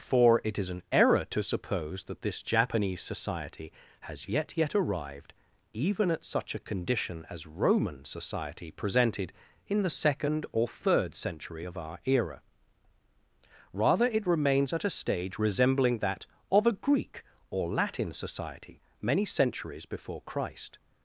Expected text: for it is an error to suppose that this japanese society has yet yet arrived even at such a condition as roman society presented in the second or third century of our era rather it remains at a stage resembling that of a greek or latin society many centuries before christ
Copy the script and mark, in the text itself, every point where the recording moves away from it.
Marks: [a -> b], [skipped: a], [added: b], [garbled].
for it is an error to suppose that this japanese society has yet yet arrived even at such a condition as roman society presented in the second or third century of our era rather it remains at a stage resembling that of a greek or latin society many centuries before christ